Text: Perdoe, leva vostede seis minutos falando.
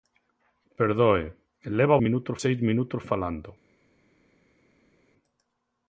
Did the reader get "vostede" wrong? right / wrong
wrong